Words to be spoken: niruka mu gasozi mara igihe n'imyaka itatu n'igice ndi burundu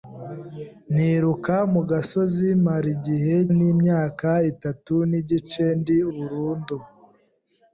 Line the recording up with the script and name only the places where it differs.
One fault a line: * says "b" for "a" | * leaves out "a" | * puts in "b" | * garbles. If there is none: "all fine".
all fine